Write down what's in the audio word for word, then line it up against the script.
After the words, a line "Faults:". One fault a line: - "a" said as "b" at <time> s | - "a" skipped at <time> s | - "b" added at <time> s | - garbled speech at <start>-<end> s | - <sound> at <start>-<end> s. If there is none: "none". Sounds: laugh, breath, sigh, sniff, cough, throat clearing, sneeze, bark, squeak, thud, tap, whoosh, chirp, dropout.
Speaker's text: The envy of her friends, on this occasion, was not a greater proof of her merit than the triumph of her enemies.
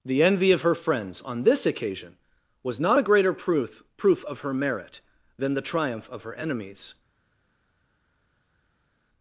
The envy of her friends, on this occasion, was not a greater proof proof of her merit than the triumph of her enemies.
Faults:
- "proof" added at 4.0 s